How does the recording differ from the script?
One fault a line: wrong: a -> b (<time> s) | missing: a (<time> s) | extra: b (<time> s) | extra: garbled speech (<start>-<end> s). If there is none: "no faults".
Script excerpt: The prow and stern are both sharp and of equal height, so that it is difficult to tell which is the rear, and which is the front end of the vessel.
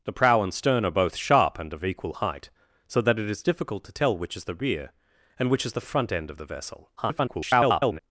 extra: garbled speech (7.0-8.0 s)